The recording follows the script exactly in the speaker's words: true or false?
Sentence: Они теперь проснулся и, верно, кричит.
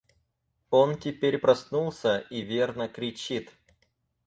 false